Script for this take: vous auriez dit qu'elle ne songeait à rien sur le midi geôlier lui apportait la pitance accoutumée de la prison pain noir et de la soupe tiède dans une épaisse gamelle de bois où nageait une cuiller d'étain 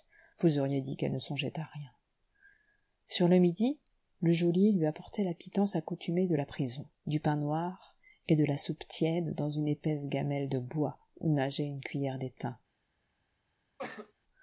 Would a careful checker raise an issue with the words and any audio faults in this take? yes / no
yes